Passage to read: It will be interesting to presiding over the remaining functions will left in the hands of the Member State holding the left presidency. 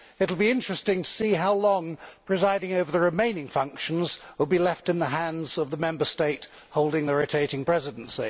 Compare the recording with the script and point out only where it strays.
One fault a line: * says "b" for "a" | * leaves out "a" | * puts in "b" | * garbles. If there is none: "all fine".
* puts in "see how long"
* puts in "be"
* says "rotating" for "left"